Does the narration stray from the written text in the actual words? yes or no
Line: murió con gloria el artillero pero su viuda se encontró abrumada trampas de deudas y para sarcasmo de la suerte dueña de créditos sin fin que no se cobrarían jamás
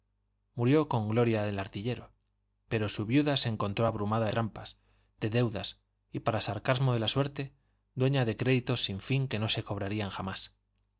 no